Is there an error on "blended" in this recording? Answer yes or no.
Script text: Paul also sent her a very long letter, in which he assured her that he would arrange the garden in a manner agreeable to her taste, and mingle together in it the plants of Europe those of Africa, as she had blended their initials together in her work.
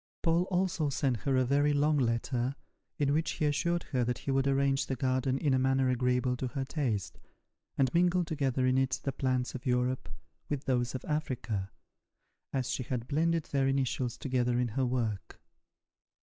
no